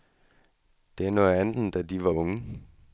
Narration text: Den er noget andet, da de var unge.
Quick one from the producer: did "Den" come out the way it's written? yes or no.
no